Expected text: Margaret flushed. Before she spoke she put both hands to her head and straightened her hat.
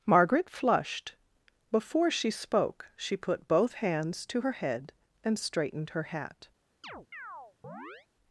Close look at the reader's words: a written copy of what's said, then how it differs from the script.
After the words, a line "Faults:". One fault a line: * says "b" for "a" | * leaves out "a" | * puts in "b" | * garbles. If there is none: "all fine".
Margaret flushed. Before she spoke she put both hands to her head and straightened her hat.
Faults:
all fine